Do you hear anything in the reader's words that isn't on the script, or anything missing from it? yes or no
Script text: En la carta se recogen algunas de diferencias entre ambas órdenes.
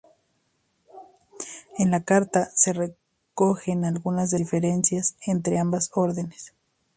no